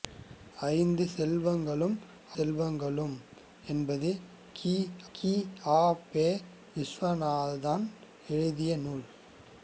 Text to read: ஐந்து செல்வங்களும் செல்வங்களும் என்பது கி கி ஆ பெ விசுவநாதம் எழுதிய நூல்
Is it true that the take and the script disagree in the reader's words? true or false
false